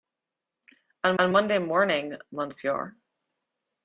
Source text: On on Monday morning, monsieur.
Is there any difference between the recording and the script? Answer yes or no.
no